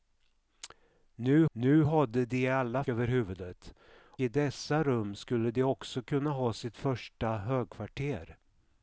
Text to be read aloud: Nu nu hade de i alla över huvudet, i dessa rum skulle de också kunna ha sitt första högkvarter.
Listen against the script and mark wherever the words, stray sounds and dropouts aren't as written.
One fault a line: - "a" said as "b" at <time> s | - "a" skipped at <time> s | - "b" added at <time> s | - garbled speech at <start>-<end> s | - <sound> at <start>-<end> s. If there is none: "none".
none